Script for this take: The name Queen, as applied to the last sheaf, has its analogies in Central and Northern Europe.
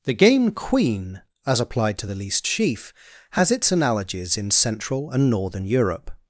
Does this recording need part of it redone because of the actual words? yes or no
yes